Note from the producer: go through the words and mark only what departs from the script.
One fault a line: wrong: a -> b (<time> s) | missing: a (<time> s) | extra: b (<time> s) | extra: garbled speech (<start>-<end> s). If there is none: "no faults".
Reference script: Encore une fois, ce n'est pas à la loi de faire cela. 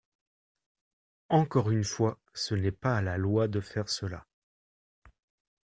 no faults